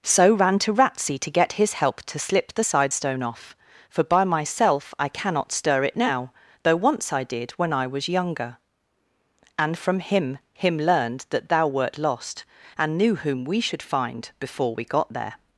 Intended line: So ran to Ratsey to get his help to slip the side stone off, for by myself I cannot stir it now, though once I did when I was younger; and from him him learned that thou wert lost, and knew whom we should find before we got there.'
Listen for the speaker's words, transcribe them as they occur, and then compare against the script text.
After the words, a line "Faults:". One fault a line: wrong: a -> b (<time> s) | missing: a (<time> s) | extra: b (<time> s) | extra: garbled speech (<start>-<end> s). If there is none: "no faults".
So ran to Ratsey to get his help to slip the side stone off, for by myself I cannot stir it now, though once I did when I was younger; and from him him learned that thou wert lost, and knew whom we should find before we got there.'
Faults:
no faults